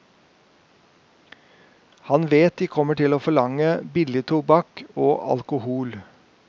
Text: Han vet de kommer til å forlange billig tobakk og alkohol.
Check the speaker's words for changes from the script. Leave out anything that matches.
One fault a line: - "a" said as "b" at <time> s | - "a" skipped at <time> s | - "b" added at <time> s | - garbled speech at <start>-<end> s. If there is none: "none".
none